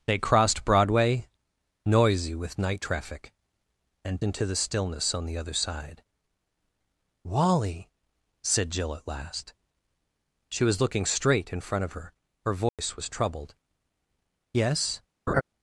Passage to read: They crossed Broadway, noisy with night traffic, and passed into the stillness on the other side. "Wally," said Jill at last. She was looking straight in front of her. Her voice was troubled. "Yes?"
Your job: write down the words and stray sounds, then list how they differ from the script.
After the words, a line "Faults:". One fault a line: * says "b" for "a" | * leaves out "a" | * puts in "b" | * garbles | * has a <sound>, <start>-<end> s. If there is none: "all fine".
They crossed Broadway, noisy with night traffic, and into the stillness on the other side. "Wally," said Jill at last. She was looking straight in front of her. Her voice was troubled. "Yes?"
Faults:
* leaves out "passed"
* has a dropout, 12.7-12.8 s
* has a laugh, 15.3-15.4 s